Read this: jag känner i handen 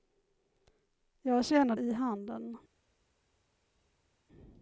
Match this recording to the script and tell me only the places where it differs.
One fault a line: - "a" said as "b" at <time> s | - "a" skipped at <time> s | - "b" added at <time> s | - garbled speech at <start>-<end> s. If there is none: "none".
none